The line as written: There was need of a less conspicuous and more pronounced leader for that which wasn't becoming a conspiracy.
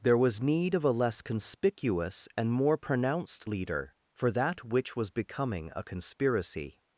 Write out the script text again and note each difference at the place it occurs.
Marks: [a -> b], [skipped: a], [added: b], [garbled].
There was need of a less conspicuous and more pronounced leader for that which [wasn't -> was] becoming a conspiracy.